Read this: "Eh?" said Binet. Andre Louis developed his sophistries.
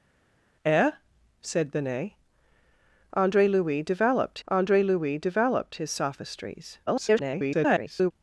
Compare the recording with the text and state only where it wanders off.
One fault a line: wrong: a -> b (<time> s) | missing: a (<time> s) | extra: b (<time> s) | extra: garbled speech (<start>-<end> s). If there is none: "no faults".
extra: andre Louis developed (4.5 s)
extra: garbled speech (6.9-8.1 s)